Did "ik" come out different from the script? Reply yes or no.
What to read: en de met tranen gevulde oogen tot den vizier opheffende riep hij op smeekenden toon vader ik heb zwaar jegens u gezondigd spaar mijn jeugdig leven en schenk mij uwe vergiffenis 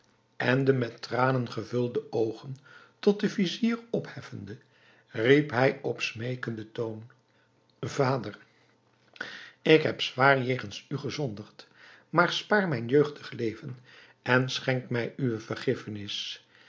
no